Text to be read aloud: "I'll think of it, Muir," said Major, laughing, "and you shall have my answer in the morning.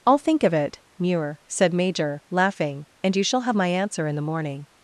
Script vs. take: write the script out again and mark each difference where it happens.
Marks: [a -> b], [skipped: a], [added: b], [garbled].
"I'll think of it, Muir," said Major, laughing, "and you shall have my answer in the morning.